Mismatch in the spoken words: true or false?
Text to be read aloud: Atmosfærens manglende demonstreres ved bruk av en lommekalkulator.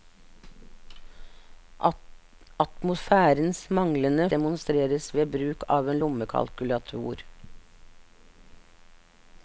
false